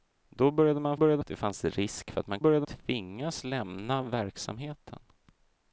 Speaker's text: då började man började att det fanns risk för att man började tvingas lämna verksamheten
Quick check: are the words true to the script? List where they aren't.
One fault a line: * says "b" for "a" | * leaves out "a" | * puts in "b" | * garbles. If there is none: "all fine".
all fine